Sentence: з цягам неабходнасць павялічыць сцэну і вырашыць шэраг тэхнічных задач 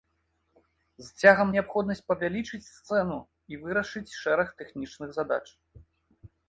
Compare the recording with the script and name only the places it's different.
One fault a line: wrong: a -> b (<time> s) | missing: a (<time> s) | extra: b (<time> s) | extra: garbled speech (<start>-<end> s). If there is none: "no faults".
no faults